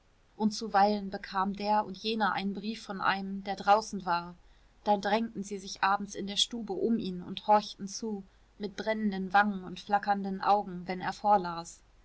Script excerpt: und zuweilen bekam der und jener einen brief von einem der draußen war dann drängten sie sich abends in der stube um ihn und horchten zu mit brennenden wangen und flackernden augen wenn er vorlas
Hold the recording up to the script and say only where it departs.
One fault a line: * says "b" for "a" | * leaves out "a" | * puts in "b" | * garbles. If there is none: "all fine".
all fine